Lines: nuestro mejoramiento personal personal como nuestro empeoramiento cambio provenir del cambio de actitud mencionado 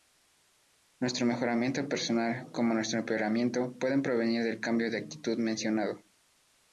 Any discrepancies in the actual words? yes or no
yes